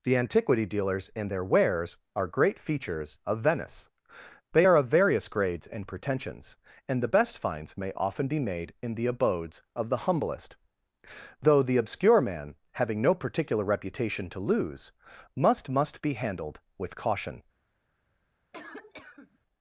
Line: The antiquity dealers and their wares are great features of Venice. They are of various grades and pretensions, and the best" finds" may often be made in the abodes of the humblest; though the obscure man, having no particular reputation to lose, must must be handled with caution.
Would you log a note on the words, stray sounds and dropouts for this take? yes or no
yes